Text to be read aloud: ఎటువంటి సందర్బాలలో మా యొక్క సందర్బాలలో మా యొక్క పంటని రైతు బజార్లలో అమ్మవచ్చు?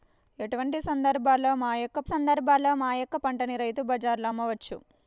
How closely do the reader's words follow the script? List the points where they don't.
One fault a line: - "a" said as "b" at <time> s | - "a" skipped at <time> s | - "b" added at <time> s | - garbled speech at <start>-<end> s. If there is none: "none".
none